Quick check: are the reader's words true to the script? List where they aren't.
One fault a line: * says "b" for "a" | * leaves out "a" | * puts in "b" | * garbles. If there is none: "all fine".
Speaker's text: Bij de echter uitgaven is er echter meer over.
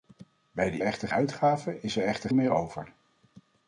all fine